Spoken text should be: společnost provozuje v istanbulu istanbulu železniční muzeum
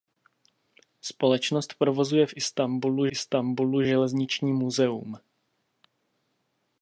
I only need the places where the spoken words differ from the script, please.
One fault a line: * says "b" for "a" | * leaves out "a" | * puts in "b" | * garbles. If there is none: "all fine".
all fine